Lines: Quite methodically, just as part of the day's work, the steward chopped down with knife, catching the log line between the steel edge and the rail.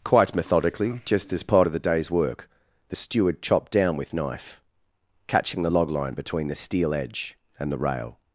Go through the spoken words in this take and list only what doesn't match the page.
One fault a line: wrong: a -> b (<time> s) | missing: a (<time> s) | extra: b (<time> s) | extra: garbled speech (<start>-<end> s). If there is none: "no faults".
no faults